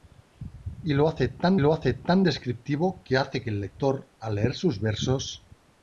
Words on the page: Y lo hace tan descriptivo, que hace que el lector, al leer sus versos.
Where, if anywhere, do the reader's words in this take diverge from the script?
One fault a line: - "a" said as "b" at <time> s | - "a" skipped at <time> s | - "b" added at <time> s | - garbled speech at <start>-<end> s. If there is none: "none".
- "lo hace tan" added at 1.6 s